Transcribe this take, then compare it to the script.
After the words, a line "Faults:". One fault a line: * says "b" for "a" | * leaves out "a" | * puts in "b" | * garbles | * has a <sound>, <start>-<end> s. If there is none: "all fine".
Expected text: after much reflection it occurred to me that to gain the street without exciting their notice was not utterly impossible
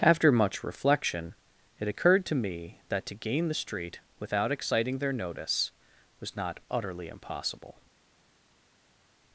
after much reflection it occurred to me that to gain the street without exciting their notice was not utterly impossible
Faults:
all fine